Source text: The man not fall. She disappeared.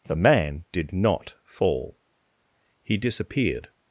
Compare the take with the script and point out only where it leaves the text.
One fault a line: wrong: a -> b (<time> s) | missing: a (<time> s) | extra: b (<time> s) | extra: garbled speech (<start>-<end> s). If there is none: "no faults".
extra: did (0.7 s)
wrong: She -> He (2.8 s)